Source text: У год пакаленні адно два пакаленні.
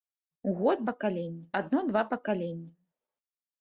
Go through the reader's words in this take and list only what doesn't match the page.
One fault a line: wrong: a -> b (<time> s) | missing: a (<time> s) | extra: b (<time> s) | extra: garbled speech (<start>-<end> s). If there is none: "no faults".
no faults